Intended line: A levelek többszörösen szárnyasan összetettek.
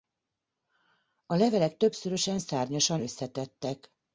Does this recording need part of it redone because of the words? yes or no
no